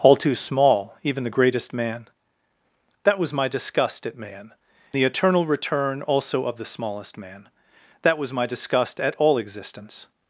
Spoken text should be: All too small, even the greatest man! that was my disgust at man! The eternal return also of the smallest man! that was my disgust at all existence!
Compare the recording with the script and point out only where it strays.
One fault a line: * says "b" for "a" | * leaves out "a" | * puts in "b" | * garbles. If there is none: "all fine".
all fine